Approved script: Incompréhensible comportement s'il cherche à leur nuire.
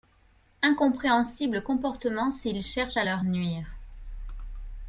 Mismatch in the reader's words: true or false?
false